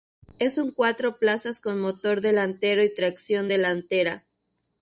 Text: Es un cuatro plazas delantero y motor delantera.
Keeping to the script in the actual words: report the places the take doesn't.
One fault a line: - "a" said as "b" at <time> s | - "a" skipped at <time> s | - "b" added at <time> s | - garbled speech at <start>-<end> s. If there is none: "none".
- "con motor" added at 1.6 s
- "motor" said as "tracción" at 2.9 s